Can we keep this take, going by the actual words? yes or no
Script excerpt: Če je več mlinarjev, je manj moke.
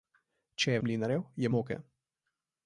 no